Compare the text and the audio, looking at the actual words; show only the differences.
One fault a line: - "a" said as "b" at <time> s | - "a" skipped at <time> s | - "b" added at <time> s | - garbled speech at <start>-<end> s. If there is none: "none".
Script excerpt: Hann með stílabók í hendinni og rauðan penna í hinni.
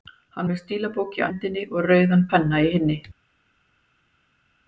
none